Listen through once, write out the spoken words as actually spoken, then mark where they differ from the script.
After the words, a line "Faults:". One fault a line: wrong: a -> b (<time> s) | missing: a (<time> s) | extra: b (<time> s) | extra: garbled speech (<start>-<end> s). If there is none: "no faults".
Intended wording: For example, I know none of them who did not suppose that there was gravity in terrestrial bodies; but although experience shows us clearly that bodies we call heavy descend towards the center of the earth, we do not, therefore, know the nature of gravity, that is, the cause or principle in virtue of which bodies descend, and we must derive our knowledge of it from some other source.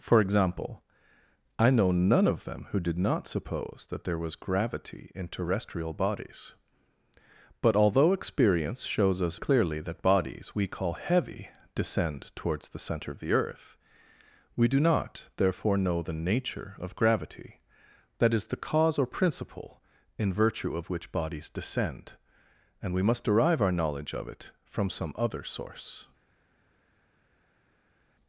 For example, I know none of them who did not suppose that there was gravity in terrestrial bodies; but although experience shows us clearly that bodies we call heavy descend towards the center of the earth, we do not, therefore, know the nature of gravity, that is, the cause or principle in virtue of which bodies descend, and we must derive our knowledge of it from some other source.
Faults:
no faults